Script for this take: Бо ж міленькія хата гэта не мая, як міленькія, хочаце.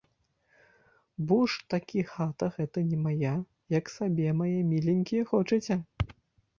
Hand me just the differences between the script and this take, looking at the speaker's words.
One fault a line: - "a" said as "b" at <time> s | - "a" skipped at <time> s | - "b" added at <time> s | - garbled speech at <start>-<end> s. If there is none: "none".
- "міленькія" said as "такі" at 1.7 s
- "сабе мае" added at 4.0 s